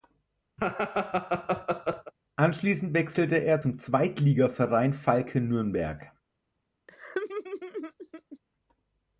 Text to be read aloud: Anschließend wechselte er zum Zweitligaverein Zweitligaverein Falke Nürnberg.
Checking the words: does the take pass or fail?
fail